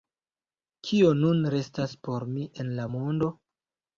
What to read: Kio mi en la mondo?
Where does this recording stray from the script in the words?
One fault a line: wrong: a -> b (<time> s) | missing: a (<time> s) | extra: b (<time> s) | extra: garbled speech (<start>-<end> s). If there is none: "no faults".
extra: nun restas por (1.2 s)